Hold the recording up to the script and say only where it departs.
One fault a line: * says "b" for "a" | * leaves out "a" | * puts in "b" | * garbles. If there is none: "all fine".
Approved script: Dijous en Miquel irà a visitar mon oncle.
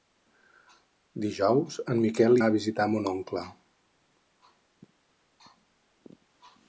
* leaves out "irà"